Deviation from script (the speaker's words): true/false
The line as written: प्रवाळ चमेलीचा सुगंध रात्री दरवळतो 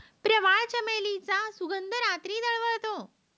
false